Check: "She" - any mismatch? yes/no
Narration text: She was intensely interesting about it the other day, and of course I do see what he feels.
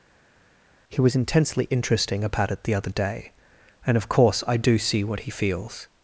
yes